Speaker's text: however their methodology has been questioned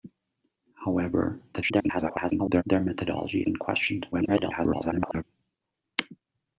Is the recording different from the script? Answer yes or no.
yes